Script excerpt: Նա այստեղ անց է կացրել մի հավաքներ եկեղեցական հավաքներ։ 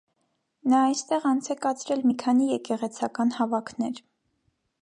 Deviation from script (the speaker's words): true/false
true